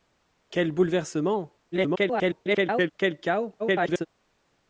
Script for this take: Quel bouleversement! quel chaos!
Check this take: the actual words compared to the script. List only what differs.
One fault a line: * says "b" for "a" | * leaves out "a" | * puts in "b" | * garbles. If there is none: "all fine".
* garbles
* garbles